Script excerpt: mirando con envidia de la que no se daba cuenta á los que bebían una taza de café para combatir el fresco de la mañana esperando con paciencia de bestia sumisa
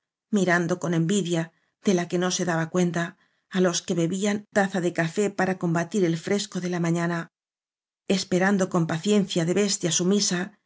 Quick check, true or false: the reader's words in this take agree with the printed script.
false